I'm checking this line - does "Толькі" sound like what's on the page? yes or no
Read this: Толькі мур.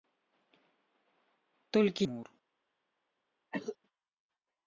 yes